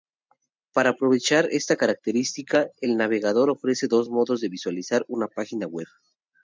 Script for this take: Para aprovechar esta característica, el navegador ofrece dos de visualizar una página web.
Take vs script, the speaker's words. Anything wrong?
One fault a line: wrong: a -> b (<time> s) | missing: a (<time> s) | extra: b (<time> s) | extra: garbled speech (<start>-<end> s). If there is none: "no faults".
extra: modos (4.1 s)